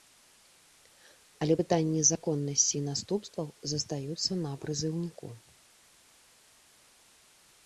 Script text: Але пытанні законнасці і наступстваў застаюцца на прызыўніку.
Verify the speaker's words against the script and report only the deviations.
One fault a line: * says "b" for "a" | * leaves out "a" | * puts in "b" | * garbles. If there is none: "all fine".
all fine